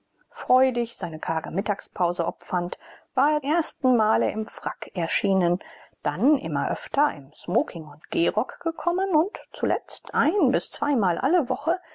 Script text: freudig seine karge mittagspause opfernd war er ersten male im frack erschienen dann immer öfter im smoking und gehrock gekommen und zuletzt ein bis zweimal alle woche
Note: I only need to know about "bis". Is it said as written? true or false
true